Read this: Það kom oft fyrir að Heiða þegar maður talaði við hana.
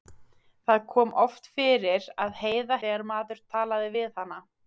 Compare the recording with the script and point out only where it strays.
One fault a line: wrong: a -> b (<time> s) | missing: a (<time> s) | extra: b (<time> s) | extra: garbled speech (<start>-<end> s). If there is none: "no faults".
no faults